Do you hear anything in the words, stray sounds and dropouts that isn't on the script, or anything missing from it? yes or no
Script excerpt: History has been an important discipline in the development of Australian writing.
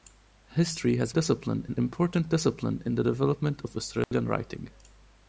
yes